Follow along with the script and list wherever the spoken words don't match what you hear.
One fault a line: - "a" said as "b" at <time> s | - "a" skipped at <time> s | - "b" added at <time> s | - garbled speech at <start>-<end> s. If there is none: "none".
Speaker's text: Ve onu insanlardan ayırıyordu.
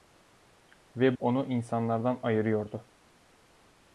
none